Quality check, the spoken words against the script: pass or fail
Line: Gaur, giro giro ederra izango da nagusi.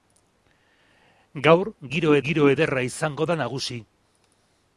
pass